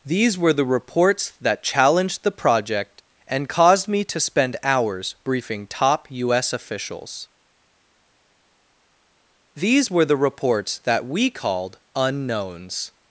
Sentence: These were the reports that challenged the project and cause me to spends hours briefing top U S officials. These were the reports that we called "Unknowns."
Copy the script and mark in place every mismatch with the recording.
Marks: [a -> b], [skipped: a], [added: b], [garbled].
These were the reports that challenged the project and [cause -> caused] me to [spends -> spend] hours briefing top U S officials. These were the reports that we called "Unknowns."